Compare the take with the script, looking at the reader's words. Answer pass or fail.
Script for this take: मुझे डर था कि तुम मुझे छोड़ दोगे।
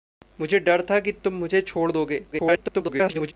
fail